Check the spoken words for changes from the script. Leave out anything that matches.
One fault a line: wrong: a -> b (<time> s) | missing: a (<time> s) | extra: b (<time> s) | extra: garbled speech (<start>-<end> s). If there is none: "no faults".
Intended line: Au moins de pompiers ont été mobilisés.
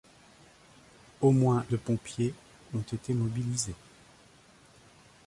no faults